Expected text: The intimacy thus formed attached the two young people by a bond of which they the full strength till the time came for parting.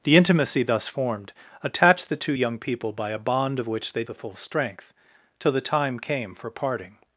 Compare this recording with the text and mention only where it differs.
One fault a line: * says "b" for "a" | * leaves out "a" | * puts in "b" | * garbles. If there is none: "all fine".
all fine